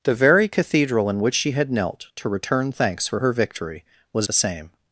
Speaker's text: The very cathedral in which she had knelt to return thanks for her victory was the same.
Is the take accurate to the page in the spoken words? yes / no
yes